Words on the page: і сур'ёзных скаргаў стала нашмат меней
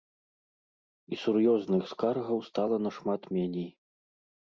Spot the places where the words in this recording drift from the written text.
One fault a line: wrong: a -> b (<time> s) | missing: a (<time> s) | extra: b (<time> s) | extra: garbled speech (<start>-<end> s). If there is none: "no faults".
no faults